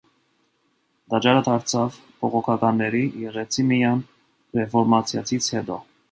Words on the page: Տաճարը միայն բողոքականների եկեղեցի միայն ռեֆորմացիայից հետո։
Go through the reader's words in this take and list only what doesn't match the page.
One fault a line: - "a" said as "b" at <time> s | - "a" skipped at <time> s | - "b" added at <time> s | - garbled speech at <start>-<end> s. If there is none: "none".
- "միայն" said as "դարձավ" at 1.5 s